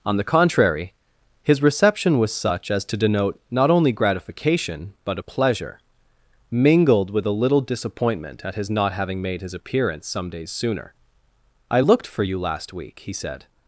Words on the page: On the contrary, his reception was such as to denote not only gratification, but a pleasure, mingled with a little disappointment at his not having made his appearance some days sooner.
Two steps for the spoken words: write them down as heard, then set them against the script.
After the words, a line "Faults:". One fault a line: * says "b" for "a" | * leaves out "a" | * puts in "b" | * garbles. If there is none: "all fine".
On the contrary, his reception was such as to denote not only gratification, but a pleasure, mingled with a little disappointment at his not having made his appearance some days sooner. "I looked for you last week," he said
Faults:
* puts in "I looked for you last week he said"